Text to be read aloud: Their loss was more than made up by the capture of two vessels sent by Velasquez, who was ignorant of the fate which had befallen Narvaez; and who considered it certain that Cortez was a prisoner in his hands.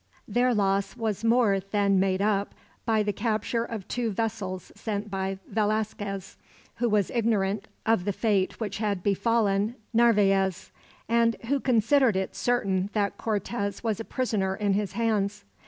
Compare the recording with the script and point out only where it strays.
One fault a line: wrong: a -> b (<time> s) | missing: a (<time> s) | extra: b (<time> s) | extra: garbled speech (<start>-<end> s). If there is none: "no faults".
no faults